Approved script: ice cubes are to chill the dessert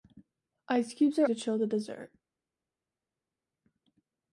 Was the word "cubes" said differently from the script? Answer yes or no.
no